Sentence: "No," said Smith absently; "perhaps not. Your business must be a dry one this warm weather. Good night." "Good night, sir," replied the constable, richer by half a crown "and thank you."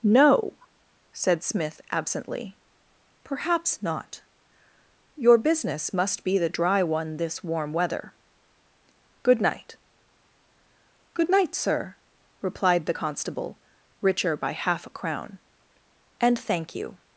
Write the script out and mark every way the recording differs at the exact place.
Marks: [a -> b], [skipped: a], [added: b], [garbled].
"No," said Smith absently; "perhaps not. Your business must be [a -> the] dry one this warm weather. Good night." "Good night, sir," replied the constable, richer by half a crown "and thank you."